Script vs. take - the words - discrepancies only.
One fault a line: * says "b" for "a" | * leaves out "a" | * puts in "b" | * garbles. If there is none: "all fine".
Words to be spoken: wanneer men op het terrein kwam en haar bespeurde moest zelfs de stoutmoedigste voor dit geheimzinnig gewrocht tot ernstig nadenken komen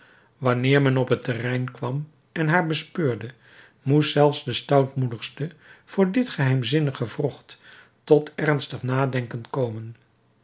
all fine